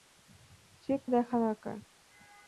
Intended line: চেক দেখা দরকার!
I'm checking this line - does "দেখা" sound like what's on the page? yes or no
yes